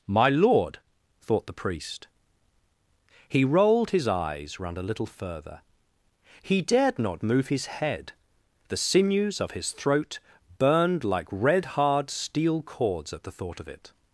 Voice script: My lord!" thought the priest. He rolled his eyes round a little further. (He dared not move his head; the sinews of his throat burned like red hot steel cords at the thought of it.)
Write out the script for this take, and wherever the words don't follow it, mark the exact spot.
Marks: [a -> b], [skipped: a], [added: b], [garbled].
My lord!" thought the priest. He rolled his eyes round a little further. (He dared not move his head; the sinews of his throat burned like red [hot -> hard] steel cords at the thought of it.)